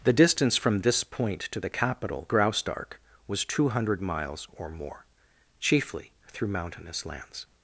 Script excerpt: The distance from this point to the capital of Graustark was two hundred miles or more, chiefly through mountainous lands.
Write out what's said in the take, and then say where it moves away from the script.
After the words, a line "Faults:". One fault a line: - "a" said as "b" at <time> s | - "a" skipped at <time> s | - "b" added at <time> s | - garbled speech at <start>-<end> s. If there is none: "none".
The distance from this point to the capital Graustark was two hundred miles or more, chiefly through mountainous lands.
Faults:
- "of" skipped at 2.3 s